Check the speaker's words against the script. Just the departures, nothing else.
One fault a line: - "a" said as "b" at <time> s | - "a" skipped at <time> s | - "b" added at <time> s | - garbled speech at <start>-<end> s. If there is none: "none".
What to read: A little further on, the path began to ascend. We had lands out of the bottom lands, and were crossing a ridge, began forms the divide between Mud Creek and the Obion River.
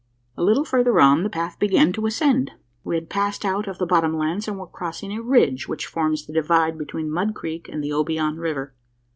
- "lands" said as "passed" at 3.1 s
- "began" said as "which" at 5.7 s